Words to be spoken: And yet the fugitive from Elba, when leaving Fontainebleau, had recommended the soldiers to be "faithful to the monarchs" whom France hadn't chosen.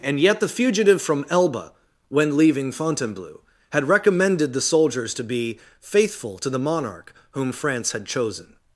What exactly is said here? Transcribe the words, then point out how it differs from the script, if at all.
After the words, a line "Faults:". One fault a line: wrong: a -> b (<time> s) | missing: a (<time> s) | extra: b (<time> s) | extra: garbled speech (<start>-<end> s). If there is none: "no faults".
And yet the fugitive from Elba, when leaving Fontainebleau, had recommended the soldiers to be "faithful to the monarch" whom France had chosen.
Faults:
wrong: monarchs -> monarch (6.6 s)
wrong: hadn't -> had (7.9 s)